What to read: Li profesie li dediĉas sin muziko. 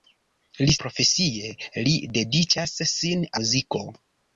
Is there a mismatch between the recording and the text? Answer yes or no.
no